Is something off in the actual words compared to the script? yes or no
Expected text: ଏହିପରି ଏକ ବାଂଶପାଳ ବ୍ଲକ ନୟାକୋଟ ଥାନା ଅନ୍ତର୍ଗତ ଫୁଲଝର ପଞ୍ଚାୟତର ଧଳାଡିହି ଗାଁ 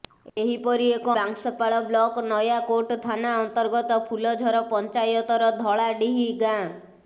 no